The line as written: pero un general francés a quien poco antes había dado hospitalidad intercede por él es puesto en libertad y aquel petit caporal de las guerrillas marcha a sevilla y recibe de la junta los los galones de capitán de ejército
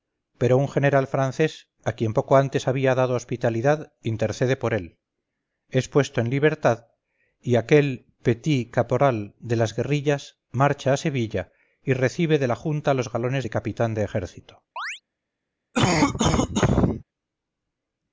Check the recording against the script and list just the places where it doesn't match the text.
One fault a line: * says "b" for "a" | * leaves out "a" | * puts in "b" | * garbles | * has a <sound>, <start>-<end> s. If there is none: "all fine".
* leaves out "los"
* has a chirp, 14.8-15.0 s
* has a cough, 15.7-17.0 s